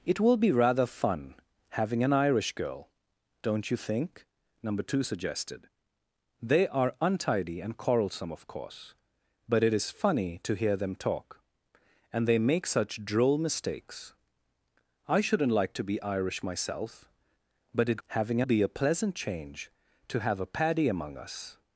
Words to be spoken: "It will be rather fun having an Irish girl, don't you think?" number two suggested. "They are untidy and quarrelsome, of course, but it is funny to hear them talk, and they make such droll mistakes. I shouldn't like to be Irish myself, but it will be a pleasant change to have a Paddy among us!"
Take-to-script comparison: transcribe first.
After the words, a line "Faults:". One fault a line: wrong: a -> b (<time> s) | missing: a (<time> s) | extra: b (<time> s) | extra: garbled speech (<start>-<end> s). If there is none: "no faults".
"It will be rather fun having an Irish girl, don't you think?" number two suggested. "They are untidy and quarrelsome, of course, but it is funny to hear them talk, and they make such droll mistakes. I shouldn't like to be Irish myself, but it having be a pleasant change to have a Paddy among us!"
Faults:
wrong: will -> having (18.1 s)